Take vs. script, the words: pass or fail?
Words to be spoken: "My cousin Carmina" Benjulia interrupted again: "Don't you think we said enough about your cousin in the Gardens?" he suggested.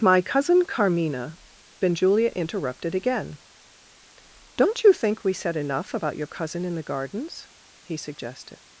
pass